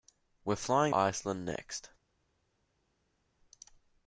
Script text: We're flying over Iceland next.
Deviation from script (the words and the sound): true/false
true